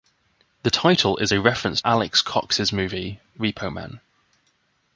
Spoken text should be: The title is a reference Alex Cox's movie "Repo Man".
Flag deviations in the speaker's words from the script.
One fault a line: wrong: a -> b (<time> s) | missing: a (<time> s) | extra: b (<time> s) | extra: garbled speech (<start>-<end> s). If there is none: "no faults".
no faults